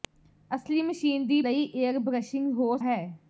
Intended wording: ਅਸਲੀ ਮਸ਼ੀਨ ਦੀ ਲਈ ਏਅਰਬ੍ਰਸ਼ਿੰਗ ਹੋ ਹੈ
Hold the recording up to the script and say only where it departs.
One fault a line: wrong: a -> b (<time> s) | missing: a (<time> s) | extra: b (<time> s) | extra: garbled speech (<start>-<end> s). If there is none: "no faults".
no faults